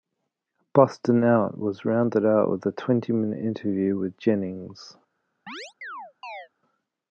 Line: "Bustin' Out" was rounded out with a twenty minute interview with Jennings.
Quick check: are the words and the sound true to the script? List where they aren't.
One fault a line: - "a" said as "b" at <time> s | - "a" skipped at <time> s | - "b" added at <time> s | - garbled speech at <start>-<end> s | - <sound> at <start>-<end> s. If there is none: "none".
- chirp at 5.5-6.5 s